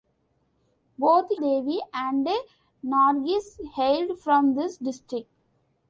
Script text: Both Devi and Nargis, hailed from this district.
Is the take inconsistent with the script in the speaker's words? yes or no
no